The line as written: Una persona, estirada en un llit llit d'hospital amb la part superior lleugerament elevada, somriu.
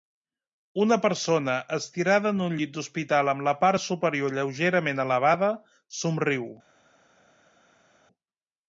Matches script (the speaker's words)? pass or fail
fail